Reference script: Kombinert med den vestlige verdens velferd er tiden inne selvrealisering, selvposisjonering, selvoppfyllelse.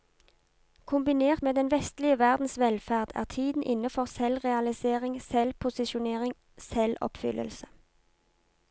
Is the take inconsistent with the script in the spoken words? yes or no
yes